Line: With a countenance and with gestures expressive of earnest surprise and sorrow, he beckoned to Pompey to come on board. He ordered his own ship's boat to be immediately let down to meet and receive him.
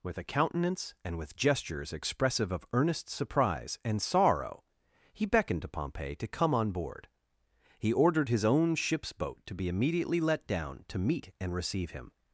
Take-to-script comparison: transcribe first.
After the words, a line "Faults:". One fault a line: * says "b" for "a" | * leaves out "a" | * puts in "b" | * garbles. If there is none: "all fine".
With a countenance and with gestures expressive of earnest surprise and sorrow, he beckoned to Pompey to come on board. He ordered his own ship's boat to be immediately let down to meet and receive him.
Faults:
all fine